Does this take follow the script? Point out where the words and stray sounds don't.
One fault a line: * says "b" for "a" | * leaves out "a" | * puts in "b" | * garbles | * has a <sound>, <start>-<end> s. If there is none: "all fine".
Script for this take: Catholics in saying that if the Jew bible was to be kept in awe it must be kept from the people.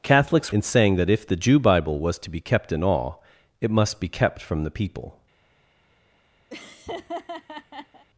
* has a laugh, 6.5-8.1 s